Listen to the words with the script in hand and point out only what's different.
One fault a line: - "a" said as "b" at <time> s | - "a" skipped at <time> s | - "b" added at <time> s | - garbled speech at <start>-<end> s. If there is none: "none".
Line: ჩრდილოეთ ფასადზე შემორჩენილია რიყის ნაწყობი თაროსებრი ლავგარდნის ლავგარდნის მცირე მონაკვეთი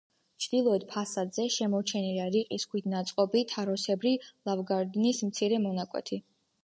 - "ქვით" added at 2.7 s
- "ლავგარდნის" skipped at 5.2 s